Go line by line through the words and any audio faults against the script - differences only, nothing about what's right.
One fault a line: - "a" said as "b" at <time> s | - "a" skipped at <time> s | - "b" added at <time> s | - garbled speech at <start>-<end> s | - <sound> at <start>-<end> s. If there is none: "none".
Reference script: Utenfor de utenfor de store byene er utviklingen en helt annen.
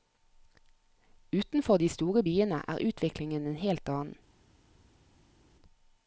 - "utenfor de" skipped at 1.9 s